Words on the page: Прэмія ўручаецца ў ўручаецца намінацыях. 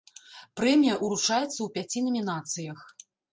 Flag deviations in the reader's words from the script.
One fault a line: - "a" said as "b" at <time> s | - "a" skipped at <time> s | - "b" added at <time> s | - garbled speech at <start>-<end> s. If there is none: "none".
- "ўручаецца" said as "пяці" at 1.8 s